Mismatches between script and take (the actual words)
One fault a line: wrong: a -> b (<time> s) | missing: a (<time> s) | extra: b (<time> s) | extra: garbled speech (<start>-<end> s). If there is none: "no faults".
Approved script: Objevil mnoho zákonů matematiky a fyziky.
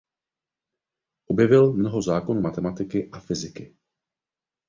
no faults